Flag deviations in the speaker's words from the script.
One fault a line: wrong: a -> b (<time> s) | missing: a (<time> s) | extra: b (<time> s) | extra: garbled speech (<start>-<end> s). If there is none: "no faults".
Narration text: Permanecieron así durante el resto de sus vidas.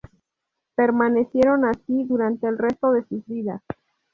no faults